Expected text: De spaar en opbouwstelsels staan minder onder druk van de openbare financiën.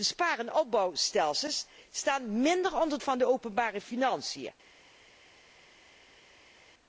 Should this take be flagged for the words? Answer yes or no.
yes